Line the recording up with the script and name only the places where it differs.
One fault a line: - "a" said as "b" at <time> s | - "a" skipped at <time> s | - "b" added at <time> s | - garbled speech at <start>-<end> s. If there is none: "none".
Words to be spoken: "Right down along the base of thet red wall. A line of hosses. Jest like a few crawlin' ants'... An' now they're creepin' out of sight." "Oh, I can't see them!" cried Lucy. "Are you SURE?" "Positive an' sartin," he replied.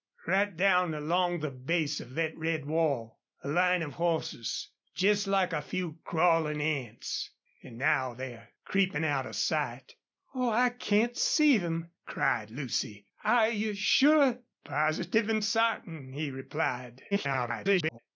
- garbled speech at 17.1-18.0 s